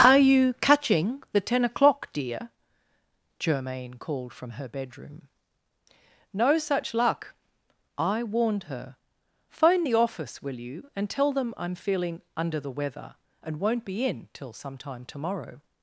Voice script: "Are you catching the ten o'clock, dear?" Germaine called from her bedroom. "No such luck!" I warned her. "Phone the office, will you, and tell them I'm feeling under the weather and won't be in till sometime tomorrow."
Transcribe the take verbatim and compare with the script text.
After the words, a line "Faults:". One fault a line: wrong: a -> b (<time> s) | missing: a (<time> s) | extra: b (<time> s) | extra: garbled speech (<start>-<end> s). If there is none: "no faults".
"Are you catching the ten o'clock, dear?" Germaine called from her bedroom. "No such luck!" I warned her. "Phone the office, will you, and tell them I'm feeling under the weather and won't be in till sometime tomorrow."
Faults:
no faults